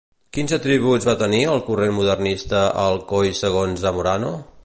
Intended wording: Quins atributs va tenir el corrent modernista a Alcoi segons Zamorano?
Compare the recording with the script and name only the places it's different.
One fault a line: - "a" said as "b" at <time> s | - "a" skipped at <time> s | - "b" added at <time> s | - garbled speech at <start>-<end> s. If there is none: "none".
none